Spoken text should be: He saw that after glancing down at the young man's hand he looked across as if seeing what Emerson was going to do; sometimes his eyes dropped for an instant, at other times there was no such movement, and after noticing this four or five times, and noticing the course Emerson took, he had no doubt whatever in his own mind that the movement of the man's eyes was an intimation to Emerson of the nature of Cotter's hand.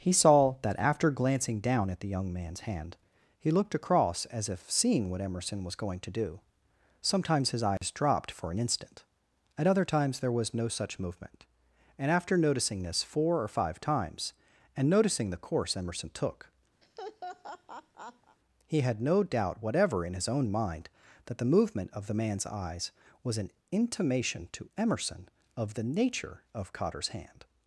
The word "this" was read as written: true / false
true